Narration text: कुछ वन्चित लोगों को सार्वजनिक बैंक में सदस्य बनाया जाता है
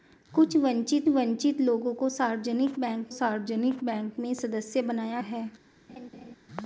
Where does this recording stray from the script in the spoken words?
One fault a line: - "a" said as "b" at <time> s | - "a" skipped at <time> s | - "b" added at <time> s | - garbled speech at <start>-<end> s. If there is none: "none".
- "वन्चित" added at 1.1 s
- "सार्वजनिक बैंक" added at 3.1 s
- "जाता" skipped at 5.2 s